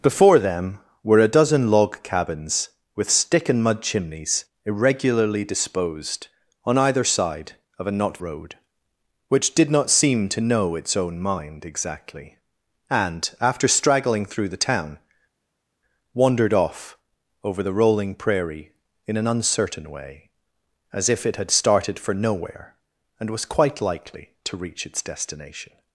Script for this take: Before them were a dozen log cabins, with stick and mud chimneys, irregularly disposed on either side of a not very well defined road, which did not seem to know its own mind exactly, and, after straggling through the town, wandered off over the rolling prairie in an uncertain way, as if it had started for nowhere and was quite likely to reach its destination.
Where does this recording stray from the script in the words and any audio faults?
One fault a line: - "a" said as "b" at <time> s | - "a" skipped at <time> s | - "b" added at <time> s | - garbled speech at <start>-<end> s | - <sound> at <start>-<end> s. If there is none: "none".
- "very well defined" skipped at 8.2 s